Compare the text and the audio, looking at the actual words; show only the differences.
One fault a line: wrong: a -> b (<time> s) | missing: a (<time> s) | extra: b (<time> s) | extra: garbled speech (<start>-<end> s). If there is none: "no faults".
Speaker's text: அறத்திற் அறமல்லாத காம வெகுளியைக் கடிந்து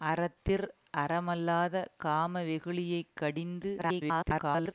extra: garbled speech (3.8-4.7 s)